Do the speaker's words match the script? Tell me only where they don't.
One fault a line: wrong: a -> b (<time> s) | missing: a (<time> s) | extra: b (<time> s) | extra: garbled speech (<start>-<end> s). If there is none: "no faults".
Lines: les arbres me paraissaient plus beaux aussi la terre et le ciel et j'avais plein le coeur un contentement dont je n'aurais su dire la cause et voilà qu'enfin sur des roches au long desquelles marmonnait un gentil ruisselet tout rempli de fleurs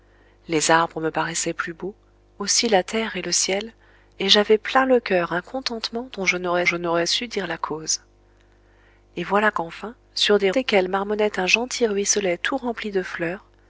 extra: je n'aurais (6.6 s)
missing: roches au long (10.5 s)